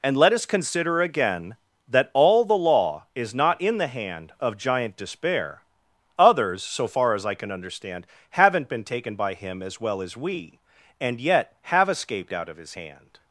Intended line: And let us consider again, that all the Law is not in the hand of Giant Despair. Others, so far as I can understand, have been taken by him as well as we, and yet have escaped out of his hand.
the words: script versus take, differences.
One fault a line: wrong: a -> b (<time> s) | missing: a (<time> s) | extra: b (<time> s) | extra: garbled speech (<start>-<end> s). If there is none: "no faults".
wrong: have -> haven't (8.3 s)